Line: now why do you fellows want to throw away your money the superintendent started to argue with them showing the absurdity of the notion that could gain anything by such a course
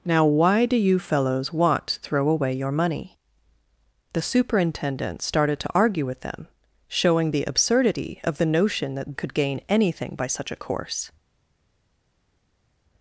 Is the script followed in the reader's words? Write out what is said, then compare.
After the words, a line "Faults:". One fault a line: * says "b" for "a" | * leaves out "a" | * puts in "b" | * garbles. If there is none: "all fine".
now why do you fellows want to throw away your money the superintendent started to argue with them showing the absurdity of the notion that could gain anything by such a course
Faults:
all fine